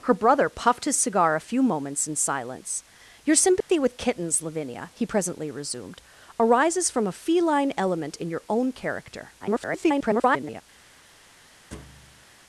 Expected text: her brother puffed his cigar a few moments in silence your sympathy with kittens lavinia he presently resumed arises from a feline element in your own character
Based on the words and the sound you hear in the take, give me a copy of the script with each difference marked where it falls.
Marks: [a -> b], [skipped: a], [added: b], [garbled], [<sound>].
her brother puffed his cigar a few moments in silence your sympathy [dropout] with kittens lavinia he presently resumed arises from a feline element in your own character [garbled] [thud]